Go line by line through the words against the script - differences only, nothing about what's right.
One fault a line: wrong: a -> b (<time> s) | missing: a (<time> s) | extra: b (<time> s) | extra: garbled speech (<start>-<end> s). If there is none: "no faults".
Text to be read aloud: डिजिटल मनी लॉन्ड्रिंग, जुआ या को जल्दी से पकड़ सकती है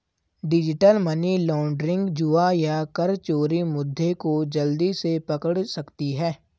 extra: कर चोरी मुद्दे (3.0 s)